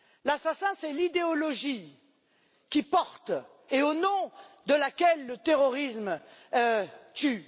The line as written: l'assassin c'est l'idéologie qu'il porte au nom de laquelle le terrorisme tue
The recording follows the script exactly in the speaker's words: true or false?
false